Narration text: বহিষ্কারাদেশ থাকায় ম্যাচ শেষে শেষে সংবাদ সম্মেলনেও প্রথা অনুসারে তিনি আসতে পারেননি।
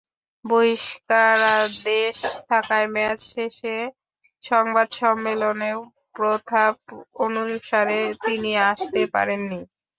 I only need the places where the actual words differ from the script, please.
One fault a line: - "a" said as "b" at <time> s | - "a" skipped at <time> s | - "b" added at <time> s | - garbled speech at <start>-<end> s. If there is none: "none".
- "শেষে" skipped at 3.8 s